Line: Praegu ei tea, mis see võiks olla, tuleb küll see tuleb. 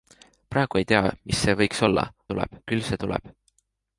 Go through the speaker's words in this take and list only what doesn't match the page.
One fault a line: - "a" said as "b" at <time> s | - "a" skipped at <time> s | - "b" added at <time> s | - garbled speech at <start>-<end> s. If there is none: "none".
none